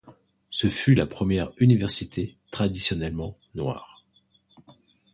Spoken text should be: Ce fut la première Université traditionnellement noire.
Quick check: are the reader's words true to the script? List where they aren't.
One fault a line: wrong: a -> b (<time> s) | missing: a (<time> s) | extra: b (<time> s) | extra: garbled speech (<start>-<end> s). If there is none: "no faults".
no faults